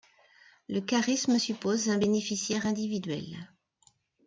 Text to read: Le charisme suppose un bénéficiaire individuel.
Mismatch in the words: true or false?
false